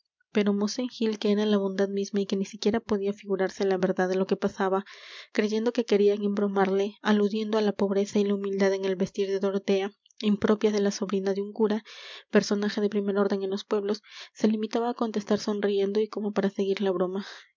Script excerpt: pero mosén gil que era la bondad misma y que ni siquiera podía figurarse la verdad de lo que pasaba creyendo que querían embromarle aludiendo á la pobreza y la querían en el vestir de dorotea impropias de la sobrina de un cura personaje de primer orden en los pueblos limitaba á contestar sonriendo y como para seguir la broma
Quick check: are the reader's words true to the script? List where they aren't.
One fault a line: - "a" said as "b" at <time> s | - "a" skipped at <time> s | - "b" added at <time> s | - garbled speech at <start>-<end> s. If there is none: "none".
- "querían" said as "humildad" at 8.4 s
- "se" added at 14.3 s